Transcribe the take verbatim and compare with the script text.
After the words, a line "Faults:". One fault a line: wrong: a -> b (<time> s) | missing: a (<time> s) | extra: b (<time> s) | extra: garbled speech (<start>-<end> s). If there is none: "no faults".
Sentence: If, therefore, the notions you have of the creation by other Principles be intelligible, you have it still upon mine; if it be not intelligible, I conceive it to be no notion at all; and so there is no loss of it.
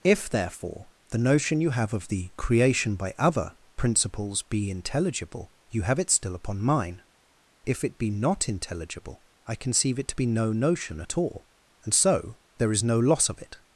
If, therefore, the notion you have of the creation by other Principles be intelligible, you have it still upon mine; if it be not intelligible, I conceive it to be no notion at all; and so there is no loss of it.
Faults:
wrong: notions -> notion (1.2 s)